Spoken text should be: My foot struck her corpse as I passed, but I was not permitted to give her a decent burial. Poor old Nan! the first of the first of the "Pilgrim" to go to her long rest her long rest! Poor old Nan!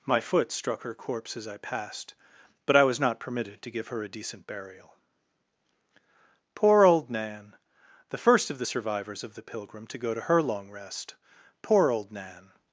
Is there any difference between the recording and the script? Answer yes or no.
yes